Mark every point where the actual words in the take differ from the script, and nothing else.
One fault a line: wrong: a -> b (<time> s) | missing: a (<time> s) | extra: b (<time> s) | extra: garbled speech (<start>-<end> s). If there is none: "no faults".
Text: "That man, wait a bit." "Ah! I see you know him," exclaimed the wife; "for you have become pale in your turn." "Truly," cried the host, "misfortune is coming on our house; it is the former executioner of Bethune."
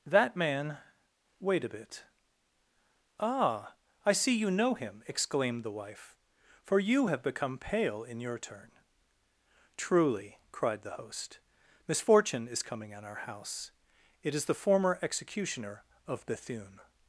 no faults